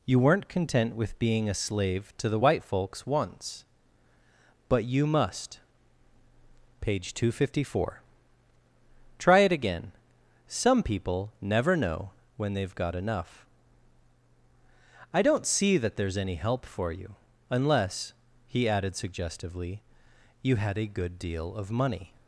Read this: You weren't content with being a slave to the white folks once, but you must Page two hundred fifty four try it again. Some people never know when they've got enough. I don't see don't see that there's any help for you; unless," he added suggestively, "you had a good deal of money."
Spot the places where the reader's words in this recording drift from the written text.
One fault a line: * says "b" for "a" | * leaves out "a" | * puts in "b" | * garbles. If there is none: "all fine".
* leaves out "don't see"